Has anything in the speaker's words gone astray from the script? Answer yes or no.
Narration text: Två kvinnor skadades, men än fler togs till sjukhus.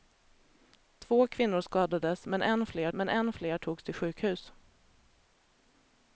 yes